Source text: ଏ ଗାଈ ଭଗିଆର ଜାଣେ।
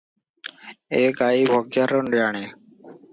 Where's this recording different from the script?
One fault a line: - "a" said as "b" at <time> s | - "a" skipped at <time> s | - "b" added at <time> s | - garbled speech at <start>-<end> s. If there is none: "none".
none